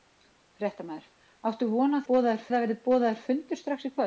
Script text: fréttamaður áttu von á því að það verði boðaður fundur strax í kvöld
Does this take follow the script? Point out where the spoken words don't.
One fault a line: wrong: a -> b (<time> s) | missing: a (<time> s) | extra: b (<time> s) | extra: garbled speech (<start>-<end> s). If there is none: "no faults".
wrong: því -> boðaður (2.1 s)